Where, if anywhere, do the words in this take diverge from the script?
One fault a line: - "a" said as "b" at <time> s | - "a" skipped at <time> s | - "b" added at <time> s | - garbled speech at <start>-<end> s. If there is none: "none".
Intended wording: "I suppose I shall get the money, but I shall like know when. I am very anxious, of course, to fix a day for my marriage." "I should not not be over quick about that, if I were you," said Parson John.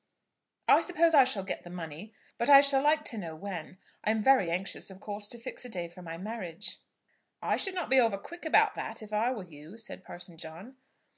- "to" added at 3.0 s
- "not" skipped at 7.9 s